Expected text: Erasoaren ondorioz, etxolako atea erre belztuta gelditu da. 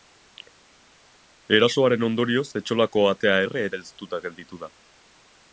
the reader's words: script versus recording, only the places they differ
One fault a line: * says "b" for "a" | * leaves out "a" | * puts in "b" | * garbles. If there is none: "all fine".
all fine